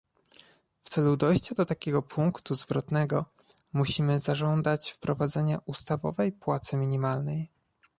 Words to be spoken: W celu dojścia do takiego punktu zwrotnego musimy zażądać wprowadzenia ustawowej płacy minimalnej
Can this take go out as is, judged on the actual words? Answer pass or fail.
pass